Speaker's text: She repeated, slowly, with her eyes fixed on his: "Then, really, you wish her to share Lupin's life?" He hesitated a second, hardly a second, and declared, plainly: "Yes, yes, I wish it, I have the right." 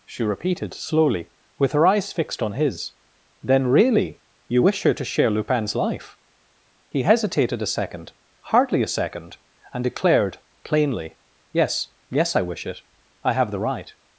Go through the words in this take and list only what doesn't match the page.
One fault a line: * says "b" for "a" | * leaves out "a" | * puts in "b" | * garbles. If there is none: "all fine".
all fine